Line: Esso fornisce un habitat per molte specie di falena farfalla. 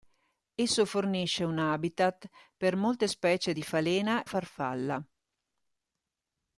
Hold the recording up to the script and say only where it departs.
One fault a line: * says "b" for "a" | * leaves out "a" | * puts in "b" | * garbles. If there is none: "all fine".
all fine